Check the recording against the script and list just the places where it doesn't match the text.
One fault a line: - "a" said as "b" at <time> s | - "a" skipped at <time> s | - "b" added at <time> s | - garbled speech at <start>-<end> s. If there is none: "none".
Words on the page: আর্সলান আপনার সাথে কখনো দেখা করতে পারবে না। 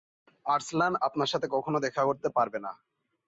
none